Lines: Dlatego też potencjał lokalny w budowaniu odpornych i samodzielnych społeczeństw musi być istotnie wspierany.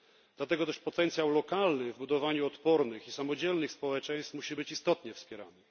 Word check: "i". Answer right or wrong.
right